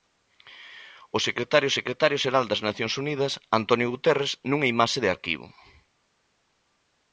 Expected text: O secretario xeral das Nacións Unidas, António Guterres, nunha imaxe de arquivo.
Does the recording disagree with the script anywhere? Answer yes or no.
yes